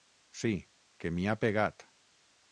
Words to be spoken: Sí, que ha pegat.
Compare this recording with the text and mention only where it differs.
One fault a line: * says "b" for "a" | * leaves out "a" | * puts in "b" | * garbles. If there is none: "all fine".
* puts in "m'hi"